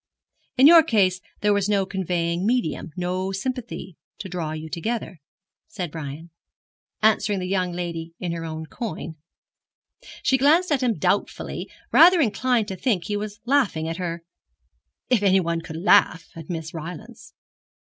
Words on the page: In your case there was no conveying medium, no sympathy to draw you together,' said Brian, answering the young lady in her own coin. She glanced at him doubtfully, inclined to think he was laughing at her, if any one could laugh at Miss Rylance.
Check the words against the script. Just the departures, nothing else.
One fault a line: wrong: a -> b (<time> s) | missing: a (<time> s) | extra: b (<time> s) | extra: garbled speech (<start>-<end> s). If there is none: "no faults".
extra: rather (11.9 s)